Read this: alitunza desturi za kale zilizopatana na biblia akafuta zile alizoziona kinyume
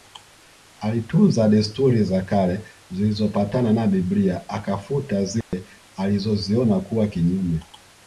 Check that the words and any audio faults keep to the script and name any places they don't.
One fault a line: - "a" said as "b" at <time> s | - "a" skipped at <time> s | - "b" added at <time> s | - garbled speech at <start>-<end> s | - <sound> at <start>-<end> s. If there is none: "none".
- dropout at 5.4-5.5 s
- "kuwa" added at 6.8 s